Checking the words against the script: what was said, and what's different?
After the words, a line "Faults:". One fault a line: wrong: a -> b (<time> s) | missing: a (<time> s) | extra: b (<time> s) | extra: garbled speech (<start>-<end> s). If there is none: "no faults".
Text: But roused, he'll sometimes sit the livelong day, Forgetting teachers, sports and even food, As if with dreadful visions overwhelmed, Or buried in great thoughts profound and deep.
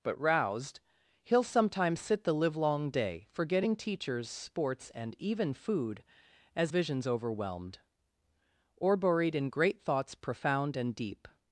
But roused, he'll sometimes sit the livelong day, Forgetting teachers, sports and even food, As visions overwhelmed, Or buried in great thoughts profound and deep.
Faults:
missing: if with dreadful (6.7 s)